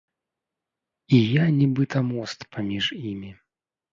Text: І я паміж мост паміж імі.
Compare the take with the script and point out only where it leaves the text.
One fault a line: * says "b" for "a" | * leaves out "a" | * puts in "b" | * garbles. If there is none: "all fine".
* says "нібыта" for "паміж"